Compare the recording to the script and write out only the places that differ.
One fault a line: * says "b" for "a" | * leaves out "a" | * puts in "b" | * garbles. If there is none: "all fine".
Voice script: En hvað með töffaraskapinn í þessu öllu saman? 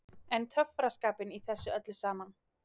* leaves out "hvað með"